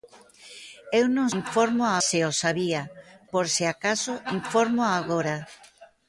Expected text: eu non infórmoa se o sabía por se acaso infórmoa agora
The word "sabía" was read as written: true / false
true